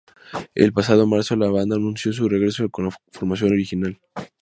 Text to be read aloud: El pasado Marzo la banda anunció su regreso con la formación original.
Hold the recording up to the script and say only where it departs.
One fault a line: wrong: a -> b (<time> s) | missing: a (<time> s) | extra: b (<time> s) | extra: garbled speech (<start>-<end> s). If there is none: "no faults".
no faults